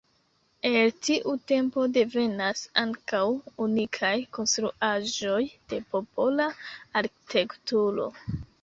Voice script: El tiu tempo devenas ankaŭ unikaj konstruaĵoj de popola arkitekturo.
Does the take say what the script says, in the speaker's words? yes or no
yes